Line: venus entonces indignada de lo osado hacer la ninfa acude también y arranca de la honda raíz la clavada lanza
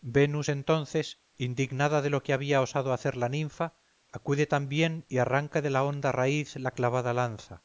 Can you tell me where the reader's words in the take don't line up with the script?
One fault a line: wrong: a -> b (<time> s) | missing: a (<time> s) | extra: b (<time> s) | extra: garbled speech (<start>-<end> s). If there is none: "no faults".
extra: que había (2.2 s)